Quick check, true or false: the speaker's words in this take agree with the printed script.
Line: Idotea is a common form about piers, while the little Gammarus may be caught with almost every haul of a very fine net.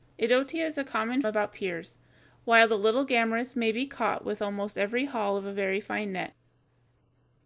false